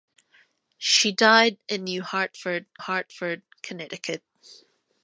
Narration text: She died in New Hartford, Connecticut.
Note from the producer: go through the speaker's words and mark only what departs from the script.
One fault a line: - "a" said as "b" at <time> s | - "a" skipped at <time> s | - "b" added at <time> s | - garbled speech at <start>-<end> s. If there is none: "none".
- "Hartford" added at 2.8 s